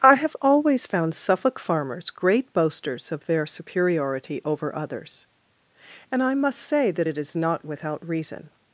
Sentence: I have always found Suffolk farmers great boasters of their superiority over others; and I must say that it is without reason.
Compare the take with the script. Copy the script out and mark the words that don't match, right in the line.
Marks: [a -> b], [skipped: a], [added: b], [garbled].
I have always found Suffolk farmers great boasters of their superiority over others; and I must say that it is [added: not] without reason.